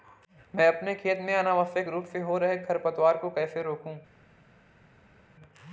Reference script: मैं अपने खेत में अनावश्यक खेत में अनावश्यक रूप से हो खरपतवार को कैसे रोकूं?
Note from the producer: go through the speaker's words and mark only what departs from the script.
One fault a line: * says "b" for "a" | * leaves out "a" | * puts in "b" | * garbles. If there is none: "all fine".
* leaves out "खेत में अनावश्यक"
* puts in "रहे"